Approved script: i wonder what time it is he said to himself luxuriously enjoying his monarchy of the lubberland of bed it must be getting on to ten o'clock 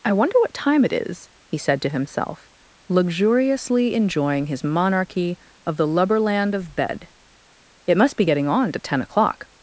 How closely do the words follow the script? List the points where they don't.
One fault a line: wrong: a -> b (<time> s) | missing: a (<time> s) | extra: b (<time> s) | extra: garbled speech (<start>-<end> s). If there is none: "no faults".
no faults